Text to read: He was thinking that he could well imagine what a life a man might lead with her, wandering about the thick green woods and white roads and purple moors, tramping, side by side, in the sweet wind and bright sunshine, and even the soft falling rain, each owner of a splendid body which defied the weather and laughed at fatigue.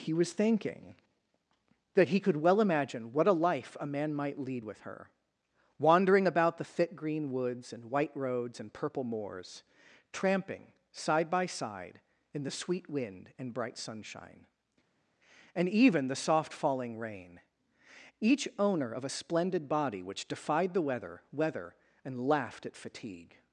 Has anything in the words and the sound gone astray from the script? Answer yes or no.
yes